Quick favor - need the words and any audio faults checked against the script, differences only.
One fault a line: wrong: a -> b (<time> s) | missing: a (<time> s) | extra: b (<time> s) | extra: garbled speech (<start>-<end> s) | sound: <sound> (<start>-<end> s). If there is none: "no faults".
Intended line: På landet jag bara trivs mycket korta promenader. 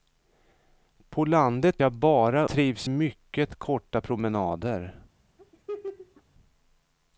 sound: laugh (5.4-6.2 s)